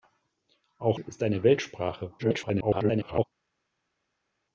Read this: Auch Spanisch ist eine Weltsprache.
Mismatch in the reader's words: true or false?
true